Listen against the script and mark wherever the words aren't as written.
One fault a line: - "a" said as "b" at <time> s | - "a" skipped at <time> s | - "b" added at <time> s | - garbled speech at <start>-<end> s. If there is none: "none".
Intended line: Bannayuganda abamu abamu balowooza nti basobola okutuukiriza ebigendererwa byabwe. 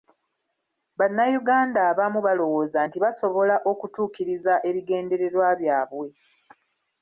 - "abamu" skipped at 2.2 s